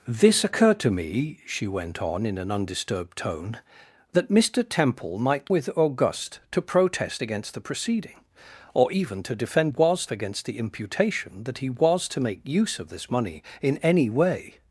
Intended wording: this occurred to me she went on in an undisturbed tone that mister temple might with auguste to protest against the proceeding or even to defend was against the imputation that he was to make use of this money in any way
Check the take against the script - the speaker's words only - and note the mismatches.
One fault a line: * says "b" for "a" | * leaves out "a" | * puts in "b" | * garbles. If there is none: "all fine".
all fine